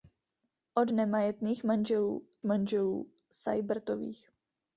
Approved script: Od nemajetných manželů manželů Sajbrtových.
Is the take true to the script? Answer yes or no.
yes